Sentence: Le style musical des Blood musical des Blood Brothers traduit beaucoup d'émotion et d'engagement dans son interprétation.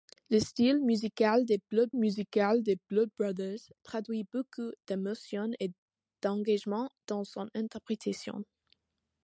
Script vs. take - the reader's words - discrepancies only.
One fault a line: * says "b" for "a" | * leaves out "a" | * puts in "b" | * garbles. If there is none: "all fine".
all fine